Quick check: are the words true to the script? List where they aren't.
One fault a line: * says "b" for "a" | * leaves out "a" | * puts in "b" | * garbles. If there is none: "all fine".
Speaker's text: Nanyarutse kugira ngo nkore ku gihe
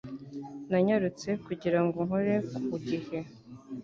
all fine